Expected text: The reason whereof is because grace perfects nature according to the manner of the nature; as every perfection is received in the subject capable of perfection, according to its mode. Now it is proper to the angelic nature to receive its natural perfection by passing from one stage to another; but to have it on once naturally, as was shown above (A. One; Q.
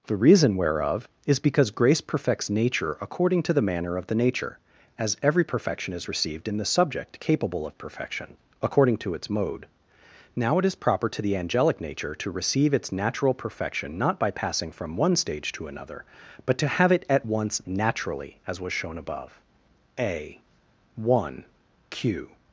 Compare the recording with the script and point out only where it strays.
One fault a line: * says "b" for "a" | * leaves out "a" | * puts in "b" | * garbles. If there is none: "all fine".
* puts in "not"
* says "at" for "on"